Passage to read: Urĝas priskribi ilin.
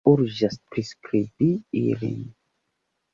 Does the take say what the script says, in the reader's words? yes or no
yes